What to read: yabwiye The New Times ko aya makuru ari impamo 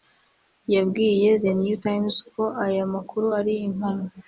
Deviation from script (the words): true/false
false